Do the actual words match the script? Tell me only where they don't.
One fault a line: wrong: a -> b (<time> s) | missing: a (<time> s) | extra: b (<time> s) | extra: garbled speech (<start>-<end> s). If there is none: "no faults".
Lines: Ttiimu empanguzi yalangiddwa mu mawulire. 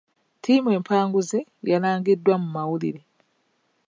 no faults